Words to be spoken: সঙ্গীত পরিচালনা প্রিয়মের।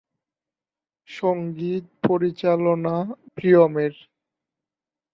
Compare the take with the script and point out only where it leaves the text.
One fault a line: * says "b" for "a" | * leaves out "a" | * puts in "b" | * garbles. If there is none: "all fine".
all fine